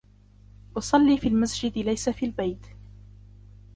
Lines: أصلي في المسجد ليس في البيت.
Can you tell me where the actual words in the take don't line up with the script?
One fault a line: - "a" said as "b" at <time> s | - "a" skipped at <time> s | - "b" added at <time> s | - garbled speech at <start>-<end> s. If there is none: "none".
none